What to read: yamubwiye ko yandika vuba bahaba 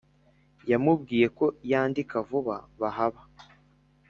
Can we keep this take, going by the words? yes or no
yes